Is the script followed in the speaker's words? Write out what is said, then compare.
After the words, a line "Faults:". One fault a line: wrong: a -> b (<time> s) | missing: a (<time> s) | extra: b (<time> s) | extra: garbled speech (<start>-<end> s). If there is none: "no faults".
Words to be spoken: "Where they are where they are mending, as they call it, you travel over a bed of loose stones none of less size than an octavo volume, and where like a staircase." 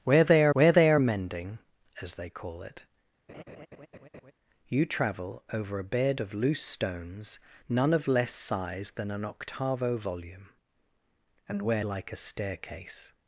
"Where they are where they are mending, as they call it, you travel over a bed of loose stones none of less size than an octavo volume, and where like a staircase."
Faults:
no faults